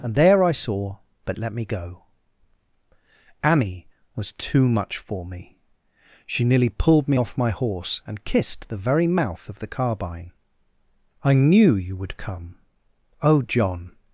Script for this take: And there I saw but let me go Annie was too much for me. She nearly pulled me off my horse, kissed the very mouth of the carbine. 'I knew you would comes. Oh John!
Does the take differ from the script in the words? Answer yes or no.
yes